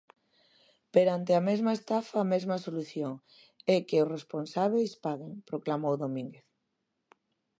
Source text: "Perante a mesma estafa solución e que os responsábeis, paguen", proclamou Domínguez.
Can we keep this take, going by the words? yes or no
no